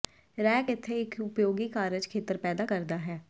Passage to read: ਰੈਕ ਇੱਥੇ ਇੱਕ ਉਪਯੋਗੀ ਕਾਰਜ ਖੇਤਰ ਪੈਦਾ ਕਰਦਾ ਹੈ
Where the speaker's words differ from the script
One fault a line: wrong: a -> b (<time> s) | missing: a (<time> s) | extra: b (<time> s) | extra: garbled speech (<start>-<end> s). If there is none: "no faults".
no faults